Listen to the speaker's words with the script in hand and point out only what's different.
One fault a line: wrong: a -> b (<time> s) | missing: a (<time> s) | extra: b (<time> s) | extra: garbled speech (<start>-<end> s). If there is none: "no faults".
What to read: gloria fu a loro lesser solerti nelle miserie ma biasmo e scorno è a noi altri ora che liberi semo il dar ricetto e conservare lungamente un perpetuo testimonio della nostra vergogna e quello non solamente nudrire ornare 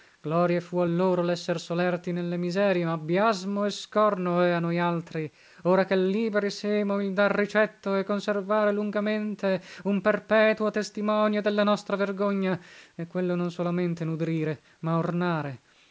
extra: ma (14.8 s)